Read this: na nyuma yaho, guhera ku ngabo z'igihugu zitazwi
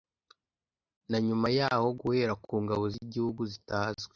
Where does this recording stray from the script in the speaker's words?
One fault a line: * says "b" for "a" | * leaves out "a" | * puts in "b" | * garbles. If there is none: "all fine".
all fine